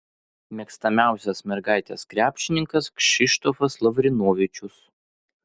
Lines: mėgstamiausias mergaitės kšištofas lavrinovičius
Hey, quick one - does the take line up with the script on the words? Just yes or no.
no